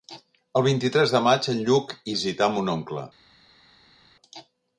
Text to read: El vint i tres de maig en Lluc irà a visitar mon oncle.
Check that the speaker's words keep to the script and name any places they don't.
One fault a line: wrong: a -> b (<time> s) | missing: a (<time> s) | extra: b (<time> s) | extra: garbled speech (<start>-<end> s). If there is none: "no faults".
missing: irà a (1.9 s)